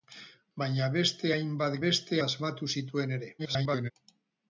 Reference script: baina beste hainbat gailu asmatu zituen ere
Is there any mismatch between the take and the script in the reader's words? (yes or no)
yes